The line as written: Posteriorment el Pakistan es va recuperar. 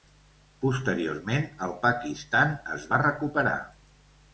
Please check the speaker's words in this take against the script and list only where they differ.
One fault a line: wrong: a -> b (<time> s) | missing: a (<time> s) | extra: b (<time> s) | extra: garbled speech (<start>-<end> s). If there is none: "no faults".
no faults